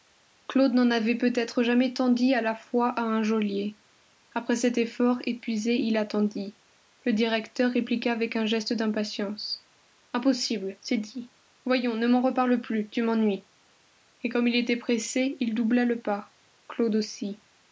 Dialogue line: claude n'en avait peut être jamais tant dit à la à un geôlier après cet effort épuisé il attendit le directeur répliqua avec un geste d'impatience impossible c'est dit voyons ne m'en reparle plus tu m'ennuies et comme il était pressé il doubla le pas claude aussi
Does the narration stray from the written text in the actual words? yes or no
yes